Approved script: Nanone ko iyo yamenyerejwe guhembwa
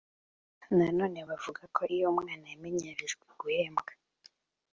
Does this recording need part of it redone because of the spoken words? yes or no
yes